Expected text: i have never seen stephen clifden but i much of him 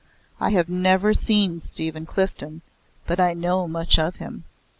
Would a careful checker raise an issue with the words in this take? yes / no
yes